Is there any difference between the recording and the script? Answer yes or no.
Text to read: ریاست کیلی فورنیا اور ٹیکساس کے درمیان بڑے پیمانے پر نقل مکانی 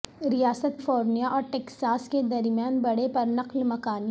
yes